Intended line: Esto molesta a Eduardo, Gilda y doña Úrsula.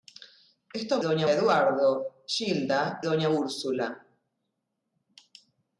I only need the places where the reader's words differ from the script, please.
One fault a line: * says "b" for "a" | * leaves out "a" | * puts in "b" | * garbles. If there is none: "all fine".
* says "doña" for "molesta"
* leaves out "y"